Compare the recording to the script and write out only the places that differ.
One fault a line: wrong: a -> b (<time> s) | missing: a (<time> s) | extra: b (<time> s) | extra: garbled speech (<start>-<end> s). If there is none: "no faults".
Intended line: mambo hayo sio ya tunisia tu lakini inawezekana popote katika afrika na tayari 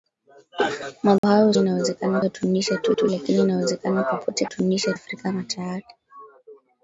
wrong: sio -> inawezekana (1.6 s)
extra: tu (2.9 s)
wrong: katika -> tunisia (4.4 s)